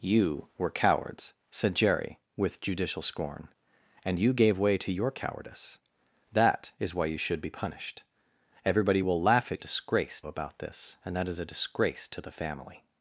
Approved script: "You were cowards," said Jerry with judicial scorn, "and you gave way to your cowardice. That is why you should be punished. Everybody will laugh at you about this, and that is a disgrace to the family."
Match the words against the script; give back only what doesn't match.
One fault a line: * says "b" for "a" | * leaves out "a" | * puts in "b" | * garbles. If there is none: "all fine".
* says "disgrace" for "you"